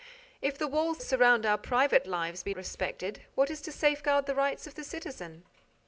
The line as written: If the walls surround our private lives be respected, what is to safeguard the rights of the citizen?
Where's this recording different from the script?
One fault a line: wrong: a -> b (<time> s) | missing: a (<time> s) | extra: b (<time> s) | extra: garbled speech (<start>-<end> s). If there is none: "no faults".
no faults